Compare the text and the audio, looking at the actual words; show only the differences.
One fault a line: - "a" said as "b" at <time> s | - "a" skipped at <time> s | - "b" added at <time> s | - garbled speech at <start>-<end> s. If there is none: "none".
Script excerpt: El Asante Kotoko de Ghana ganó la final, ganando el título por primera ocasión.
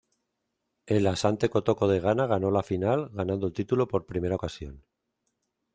none